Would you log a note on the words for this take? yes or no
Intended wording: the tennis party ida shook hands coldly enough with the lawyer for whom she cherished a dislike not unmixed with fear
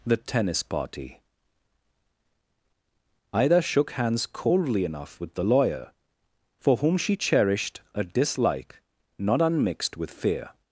no